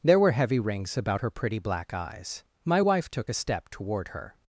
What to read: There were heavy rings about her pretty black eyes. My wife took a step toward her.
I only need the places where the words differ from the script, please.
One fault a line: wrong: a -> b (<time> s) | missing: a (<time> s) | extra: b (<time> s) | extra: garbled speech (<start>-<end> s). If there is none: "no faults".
no faults